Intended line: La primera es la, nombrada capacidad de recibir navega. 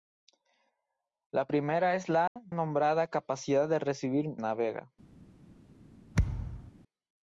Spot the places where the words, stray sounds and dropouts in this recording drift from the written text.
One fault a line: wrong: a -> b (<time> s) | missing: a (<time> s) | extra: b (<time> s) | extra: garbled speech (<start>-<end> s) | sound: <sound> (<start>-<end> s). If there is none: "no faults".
sound: dropout (2.3-2.4 s)
sound: thud (6.1-6.7 s)